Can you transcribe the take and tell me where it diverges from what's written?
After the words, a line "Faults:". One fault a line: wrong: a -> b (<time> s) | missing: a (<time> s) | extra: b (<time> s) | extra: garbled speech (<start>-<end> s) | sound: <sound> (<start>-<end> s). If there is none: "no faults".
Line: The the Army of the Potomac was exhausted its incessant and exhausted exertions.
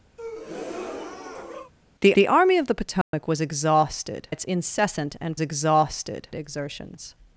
The the Army of the Potomac was exhausted its incessant and exhausted exertions.
Faults:
sound: breath (0.2-1.7 s)
sound: dropout (3.0-3.1 s)